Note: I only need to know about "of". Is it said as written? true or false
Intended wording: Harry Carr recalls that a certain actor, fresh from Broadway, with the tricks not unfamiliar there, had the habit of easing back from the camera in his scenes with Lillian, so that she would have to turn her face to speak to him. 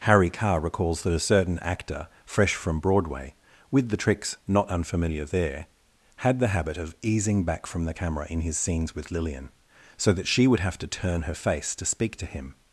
true